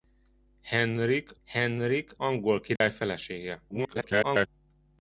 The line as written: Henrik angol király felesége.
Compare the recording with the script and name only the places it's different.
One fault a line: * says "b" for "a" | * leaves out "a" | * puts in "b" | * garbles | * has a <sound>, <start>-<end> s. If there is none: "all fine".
* puts in "henrik"
* has a dropout, 2.8-2.8 s
* garbles